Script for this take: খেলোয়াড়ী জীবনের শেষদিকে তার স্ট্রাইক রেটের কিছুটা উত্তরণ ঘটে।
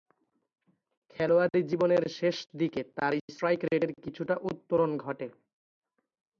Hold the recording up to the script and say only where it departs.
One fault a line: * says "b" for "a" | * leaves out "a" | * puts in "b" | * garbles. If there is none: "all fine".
all fine